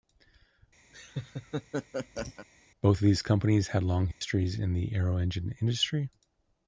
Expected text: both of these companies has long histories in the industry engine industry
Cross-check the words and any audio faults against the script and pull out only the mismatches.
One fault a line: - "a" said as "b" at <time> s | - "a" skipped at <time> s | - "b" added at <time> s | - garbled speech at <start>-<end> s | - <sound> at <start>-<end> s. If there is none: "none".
- laugh at 0.9-2.5 s
- "has" said as "had" at 3.7 s
- dropout at 4.1-4.2 s
- "industry" said as "aero" at 4.9 s